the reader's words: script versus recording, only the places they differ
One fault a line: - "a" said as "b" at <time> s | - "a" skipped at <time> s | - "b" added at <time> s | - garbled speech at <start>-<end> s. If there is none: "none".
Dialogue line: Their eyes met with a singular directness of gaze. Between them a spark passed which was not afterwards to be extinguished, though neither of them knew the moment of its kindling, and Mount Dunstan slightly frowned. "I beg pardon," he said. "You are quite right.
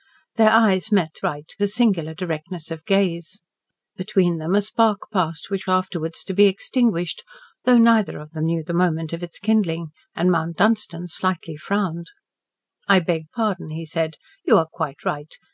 - "with" said as "right" at 1.2 s
- "was not" skipped at 5.7 s